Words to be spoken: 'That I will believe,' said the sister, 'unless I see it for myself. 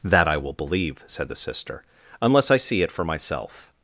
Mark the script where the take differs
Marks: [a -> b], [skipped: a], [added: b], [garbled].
'That I will believe,' said the sister, 'unless I see it for myself.